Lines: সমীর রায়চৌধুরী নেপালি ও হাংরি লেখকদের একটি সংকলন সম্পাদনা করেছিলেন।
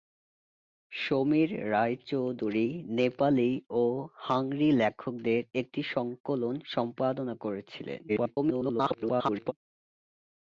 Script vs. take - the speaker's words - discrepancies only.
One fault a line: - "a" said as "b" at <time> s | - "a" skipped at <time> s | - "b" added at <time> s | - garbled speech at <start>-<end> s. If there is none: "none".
- garbled speech at 8.1-9.5 s